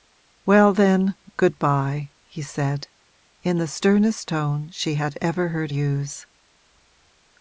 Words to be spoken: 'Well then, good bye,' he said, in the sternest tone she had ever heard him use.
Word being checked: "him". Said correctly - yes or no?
no